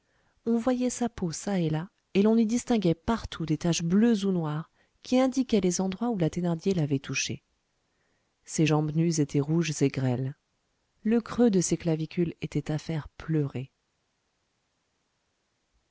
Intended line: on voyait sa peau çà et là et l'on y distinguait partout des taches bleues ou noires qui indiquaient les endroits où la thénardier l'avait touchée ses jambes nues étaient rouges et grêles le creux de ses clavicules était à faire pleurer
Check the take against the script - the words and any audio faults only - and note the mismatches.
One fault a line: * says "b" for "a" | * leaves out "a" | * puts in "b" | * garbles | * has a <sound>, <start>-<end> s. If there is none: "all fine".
all fine